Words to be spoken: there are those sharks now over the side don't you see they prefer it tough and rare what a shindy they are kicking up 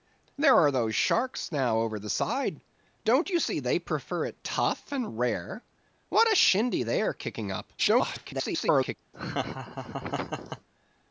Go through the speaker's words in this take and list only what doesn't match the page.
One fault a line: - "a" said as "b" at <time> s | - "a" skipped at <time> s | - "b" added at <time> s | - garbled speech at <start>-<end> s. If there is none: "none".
- garbled speech at 7.8-9.0 s